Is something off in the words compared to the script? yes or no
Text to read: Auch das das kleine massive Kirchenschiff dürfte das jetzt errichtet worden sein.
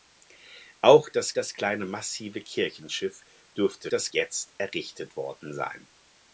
no